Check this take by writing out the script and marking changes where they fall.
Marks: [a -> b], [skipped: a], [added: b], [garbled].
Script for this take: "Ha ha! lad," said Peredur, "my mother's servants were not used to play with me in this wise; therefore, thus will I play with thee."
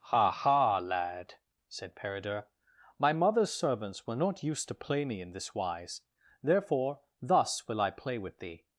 "Ha ha! lad," said Peredur, "my mother's servants were not used to play [skipped: with] me in this wise; therefore, thus will I play with thee."